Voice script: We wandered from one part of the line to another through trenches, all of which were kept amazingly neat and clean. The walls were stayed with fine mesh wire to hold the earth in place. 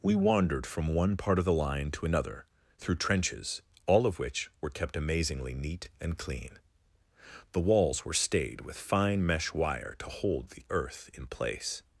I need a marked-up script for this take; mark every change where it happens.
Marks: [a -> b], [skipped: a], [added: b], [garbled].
We wandered from one part of the line to another through trenches, all of which were kept amazingly neat and clean. The walls were stayed with fine mesh wire to hold the earth in place.